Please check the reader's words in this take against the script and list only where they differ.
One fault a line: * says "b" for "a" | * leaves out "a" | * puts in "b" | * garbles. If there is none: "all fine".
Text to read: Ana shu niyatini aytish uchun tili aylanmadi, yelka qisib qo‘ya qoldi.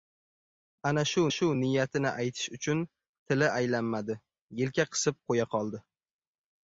* puts in "shu"